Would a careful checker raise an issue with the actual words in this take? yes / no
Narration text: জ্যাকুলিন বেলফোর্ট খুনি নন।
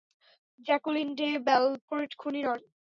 yes